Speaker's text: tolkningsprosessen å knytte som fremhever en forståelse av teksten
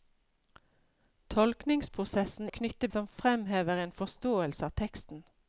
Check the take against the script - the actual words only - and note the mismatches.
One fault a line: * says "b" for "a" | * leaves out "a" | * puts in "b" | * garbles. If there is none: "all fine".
all fine